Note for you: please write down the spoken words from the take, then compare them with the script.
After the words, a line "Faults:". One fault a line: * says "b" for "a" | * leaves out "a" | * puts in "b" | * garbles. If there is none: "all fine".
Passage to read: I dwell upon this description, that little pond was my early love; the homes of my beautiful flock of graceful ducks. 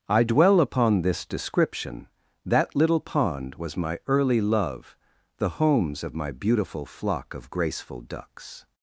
I dwell upon this description, that little pond was my early love; the homes of my beautiful flock of graceful ducks.
Faults:
all fine